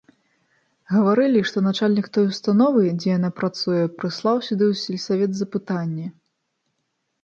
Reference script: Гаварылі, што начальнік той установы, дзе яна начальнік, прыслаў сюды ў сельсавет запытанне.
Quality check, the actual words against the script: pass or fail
fail